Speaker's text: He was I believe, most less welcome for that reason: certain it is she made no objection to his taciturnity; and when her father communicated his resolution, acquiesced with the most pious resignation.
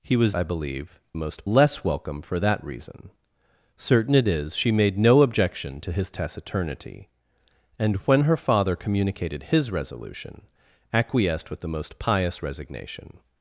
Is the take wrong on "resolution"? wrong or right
right